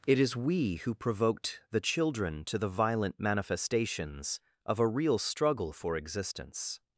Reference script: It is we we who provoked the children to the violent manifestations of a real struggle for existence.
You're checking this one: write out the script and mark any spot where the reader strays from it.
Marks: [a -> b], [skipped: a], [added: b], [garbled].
It is we [skipped: we] who provoked the children to the violent manifestations of a real struggle for existence.